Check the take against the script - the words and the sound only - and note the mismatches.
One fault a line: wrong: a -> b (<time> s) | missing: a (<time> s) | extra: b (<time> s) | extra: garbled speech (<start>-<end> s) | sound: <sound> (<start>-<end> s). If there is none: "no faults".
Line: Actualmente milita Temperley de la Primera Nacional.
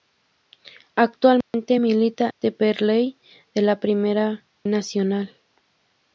sound: dropout (1.4-1.5 s)